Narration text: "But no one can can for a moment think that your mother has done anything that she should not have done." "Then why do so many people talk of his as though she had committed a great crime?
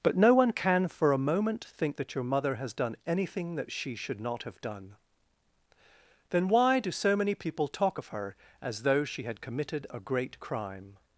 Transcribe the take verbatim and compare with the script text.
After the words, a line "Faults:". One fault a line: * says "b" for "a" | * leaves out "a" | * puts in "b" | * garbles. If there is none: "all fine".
"But no one can for a moment think that your mother has done anything that she should not have done." "Then why do so many people talk of her as though she had committed a great crime?
Faults:
* leaves out "can"
* says "her" for "his"